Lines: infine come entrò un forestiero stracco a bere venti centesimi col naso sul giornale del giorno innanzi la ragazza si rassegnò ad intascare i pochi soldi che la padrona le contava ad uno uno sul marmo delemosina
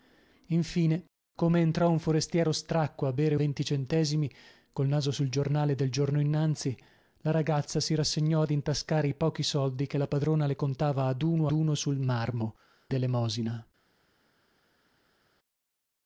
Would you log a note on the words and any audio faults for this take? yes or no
no